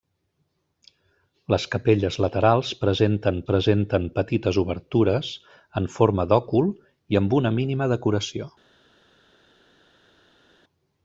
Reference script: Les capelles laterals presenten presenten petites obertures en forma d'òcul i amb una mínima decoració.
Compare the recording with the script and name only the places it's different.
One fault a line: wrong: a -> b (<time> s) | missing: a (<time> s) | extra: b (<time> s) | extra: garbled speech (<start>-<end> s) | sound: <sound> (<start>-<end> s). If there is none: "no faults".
no faults